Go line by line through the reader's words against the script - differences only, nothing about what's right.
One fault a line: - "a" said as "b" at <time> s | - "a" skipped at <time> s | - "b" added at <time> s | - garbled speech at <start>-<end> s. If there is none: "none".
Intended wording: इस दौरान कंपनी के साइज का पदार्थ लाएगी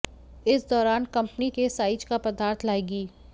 none